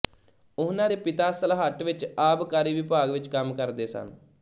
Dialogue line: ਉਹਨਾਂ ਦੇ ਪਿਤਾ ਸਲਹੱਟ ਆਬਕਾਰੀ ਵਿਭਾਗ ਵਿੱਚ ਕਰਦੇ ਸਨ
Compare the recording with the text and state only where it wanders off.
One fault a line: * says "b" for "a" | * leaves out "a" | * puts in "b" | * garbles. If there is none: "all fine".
* puts in "ਵਿੱਚ"
* puts in "ਕੰਮ"